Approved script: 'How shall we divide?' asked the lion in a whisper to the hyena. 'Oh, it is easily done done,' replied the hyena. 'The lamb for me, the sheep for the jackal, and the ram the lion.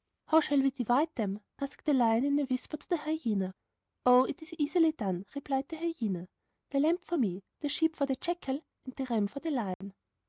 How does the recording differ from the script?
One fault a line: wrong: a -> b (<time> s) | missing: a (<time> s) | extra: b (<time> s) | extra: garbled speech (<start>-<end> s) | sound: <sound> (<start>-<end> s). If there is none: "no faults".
extra: them (1.1 s)
missing: done (5.3 s)
extra: for (9.3 s)
sound: dropout (9.7-9.8 s)